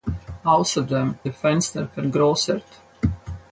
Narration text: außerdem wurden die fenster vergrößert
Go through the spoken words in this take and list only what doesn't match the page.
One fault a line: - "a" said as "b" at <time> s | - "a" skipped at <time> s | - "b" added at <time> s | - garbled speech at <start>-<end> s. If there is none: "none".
- "wurden" skipped at 1.1 s